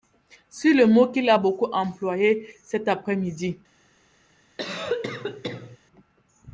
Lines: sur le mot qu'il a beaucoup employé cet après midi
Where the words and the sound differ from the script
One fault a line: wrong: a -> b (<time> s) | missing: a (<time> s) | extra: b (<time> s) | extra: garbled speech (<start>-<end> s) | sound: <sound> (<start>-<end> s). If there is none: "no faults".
sound: cough (4.6-5.8 s)